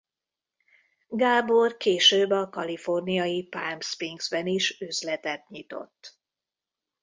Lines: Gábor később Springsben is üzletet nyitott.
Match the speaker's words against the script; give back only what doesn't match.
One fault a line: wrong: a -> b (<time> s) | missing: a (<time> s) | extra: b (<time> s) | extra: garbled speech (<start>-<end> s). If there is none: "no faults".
extra: a kaliforniai Palm (2.3 s)